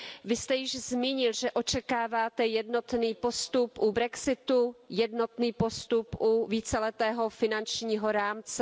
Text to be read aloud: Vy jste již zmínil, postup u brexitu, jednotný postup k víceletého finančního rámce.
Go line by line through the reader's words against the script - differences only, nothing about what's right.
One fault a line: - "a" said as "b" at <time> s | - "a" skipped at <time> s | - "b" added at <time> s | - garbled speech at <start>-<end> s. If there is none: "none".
- "že očekáváte jednotný" added at 1.3 s
- "k" said as "u" at 6.2 s